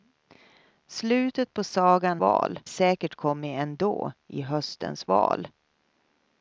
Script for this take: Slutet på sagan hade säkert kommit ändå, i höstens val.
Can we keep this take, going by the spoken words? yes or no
no